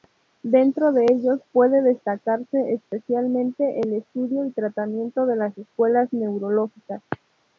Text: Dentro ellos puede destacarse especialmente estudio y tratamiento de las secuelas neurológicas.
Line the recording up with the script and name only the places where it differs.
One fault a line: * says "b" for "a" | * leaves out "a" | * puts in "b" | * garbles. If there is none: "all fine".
* puts in "de"
* puts in "el"